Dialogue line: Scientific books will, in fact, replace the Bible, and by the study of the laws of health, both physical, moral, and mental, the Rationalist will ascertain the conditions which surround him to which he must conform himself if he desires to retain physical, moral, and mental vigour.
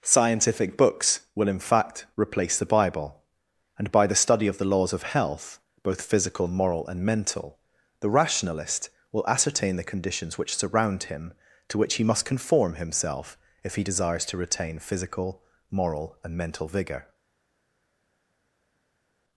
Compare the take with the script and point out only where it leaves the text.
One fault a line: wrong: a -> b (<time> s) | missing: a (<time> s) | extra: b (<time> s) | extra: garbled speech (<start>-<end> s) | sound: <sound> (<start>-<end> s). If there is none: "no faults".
no faults